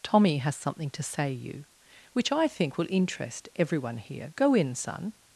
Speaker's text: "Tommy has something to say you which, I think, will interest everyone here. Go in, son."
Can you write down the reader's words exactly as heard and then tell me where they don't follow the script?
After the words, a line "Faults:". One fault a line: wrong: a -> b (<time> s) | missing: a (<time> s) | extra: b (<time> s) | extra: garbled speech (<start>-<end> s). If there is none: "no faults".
"Tommy has something to say you which, I think, will interest everyone here. Go in, son."
Faults:
no faults